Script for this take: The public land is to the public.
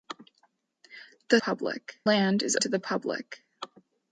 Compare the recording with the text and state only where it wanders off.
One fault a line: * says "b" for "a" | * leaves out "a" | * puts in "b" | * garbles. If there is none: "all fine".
all fine